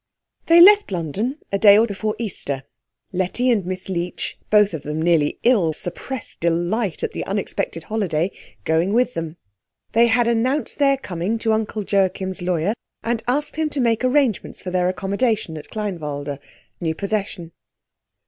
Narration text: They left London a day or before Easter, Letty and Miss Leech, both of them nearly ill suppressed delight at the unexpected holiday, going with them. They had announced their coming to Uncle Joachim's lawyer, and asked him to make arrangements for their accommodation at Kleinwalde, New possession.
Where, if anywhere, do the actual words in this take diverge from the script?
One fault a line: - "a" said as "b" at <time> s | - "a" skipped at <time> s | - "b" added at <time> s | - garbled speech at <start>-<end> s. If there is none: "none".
none